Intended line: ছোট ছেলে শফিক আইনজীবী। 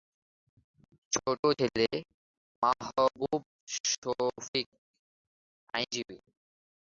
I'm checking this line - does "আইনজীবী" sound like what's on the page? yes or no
yes